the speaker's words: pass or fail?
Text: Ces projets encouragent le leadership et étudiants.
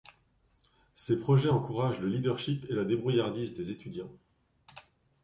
fail